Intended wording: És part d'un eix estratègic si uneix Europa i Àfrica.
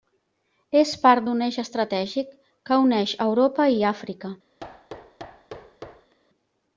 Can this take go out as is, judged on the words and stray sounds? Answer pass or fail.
fail